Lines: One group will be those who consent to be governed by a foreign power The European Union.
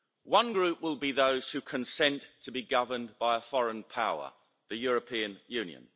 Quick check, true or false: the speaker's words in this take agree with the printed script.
true